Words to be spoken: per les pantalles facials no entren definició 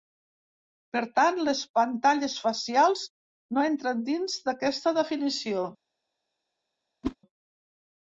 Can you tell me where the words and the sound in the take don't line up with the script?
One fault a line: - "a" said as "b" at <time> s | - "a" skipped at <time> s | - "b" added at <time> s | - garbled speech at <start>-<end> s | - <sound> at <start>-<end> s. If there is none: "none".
- "tant" added at 1.2 s
- "dins d'aquesta" added at 4.1 s
- whoosh at 7.0-7.2 s